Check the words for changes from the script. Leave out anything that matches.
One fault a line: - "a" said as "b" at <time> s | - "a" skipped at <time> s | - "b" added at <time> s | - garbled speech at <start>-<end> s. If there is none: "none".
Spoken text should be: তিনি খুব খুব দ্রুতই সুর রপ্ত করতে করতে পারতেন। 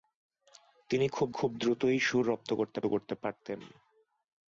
none